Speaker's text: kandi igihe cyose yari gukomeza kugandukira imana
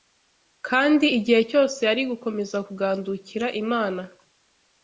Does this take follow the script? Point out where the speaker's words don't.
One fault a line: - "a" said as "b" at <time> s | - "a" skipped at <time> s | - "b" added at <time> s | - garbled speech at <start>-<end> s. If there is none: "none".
none